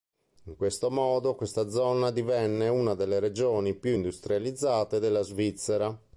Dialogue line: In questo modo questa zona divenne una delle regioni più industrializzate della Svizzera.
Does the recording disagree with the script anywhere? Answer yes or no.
no